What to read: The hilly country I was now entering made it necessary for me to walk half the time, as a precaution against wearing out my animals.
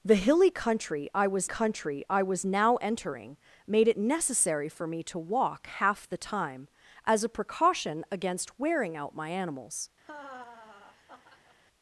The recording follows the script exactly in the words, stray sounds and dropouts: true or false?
false